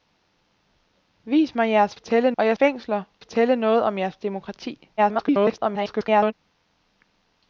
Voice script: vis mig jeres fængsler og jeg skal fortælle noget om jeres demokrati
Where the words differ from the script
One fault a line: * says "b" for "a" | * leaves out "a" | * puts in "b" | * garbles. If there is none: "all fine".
* says "fortælle" for "fængsler"
* says "fængsler" for "skal"
* garbles